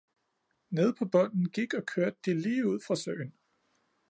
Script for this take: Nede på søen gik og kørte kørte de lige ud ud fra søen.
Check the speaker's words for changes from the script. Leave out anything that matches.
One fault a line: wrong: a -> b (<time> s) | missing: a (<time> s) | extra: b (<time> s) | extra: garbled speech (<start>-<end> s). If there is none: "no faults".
wrong: søen -> bunden (1.1 s)
missing: kørte (2.2 s)
missing: ud (2.8 s)